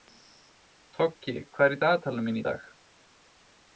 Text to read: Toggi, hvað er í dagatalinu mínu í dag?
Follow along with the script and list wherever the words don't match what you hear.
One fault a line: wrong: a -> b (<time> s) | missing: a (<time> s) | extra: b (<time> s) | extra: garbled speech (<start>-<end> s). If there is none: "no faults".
no faults